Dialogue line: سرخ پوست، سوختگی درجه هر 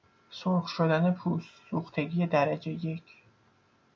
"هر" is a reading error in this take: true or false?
true